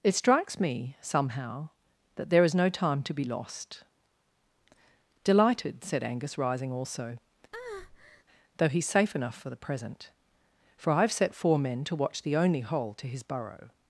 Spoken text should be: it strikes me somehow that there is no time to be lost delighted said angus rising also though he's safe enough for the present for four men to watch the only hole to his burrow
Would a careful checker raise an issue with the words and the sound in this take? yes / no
yes